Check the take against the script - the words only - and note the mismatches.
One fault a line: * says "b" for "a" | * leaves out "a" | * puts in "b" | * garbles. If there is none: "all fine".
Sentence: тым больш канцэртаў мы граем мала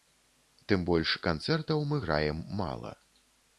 all fine